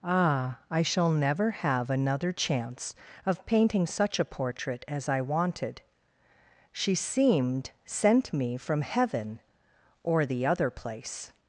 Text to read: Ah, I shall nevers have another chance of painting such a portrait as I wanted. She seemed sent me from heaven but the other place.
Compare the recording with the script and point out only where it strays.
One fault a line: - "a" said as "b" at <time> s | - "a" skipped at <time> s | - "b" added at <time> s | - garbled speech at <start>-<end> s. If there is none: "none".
- "nevers" said as "never" at 1.1 s
- "but" said as "or" at 10.0 s